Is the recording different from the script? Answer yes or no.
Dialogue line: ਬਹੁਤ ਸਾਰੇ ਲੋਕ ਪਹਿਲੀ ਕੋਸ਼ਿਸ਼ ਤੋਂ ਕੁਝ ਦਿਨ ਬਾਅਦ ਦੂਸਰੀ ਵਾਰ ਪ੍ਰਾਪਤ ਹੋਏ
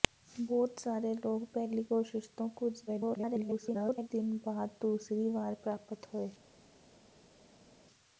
yes